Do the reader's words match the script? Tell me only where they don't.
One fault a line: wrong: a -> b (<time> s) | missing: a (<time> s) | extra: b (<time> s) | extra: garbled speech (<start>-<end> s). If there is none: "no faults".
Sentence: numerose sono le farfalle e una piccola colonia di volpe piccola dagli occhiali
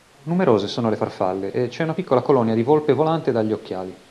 extra: c'è (1.7 s)
wrong: piccola -> volante (2.9 s)